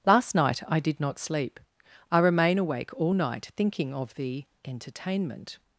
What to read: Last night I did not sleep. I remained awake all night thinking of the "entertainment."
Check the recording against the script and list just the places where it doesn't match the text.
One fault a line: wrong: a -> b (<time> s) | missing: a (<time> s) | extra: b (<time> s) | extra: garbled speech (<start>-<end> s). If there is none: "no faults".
wrong: remained -> remain (2.2 s)